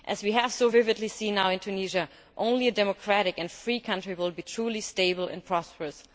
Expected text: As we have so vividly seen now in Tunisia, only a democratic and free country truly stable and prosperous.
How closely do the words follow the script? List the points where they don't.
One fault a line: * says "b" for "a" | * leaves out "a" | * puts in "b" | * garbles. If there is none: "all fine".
* puts in "will be"